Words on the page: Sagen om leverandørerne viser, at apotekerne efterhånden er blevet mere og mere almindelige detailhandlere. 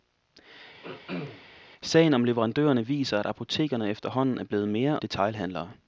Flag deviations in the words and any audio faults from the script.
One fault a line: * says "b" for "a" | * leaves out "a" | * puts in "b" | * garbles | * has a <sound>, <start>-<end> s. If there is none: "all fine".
* has a throat clearing, 0.8-1.5 s
* leaves out "og mere almindelige"